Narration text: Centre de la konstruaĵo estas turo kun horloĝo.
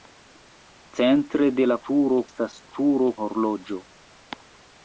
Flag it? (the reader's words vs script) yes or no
yes